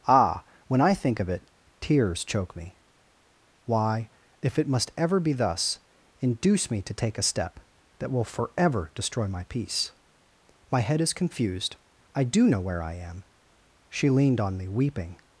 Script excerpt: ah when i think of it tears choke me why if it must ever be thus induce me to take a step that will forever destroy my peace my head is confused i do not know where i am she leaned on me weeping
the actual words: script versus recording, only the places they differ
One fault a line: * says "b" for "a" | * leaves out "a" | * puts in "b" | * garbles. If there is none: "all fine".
* leaves out "not"